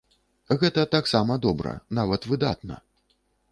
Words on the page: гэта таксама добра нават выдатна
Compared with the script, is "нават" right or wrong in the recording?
right